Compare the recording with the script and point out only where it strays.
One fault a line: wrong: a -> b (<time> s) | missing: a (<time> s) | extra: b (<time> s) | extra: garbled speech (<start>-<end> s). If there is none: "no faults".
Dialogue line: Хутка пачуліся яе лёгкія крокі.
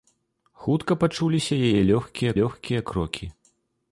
extra: лёгкія (2.4 s)